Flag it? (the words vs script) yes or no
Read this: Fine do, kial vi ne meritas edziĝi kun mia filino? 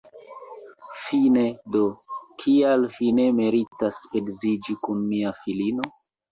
no